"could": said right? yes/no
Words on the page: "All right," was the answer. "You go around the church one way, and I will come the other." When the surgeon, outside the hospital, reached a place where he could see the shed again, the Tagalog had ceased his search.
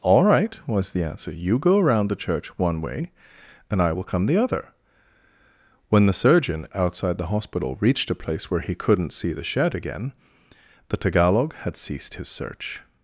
no